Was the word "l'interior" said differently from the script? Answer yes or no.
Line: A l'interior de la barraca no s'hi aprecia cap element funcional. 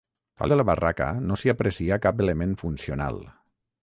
yes